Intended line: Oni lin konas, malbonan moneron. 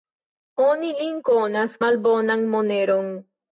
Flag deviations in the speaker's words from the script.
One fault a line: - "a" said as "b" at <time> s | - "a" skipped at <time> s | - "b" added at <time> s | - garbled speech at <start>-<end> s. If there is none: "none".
none